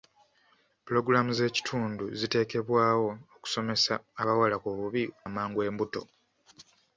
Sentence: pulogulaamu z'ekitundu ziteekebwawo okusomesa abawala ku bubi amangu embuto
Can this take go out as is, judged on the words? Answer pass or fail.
pass